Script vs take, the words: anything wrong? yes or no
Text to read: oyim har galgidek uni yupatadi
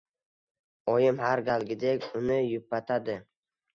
no